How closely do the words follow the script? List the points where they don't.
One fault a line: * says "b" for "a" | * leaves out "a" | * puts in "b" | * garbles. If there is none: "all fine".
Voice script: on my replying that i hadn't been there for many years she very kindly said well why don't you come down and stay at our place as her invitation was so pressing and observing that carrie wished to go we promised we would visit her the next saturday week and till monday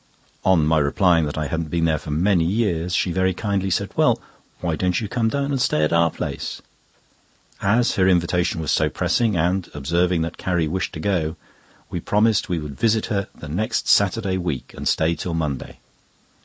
* puts in "stay"